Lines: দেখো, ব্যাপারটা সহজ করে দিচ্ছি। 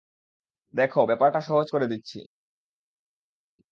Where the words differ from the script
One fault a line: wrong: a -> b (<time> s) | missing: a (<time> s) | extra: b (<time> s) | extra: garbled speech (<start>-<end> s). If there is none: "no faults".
no faults